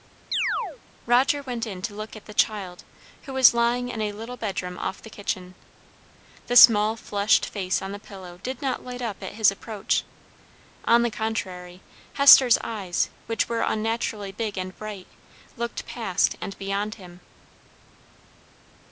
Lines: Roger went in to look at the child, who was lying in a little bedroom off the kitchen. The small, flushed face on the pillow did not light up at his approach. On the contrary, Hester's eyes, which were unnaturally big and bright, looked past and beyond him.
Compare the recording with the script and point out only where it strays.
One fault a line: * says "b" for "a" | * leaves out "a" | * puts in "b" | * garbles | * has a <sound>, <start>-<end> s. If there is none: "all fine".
* has a chirp, 0.3-0.8 s